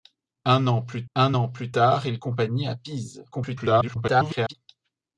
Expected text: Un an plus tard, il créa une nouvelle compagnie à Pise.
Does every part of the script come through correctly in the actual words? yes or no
no